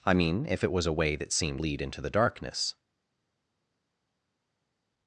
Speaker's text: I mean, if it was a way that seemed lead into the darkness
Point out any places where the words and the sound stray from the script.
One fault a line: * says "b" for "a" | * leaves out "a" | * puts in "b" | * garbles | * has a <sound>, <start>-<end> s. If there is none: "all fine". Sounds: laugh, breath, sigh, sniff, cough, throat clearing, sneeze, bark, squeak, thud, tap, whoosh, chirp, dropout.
all fine